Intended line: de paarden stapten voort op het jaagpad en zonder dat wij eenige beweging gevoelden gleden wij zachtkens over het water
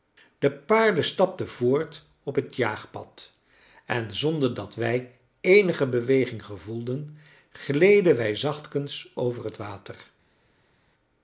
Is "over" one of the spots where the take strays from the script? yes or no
no